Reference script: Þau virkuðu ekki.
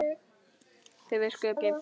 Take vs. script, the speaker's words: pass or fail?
pass